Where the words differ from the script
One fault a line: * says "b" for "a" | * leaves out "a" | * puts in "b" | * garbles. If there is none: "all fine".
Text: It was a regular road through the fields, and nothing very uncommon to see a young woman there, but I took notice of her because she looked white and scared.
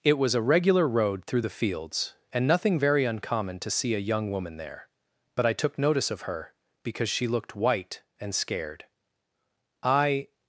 * puts in "I"